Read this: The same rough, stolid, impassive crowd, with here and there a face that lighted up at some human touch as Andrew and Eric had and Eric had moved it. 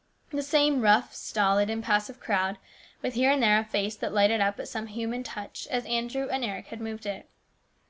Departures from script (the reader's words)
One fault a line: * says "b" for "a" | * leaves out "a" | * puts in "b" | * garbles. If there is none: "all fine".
* leaves out "and Eric had"